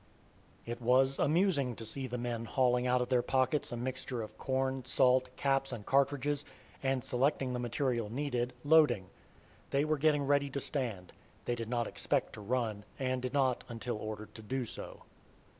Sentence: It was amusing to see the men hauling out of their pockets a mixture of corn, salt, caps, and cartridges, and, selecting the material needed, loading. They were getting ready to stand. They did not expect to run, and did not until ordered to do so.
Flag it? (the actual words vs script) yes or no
no